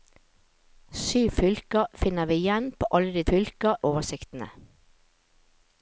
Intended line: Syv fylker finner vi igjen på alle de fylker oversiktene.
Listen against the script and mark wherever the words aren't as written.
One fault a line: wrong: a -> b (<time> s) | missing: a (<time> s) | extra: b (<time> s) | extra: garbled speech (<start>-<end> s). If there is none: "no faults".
no faults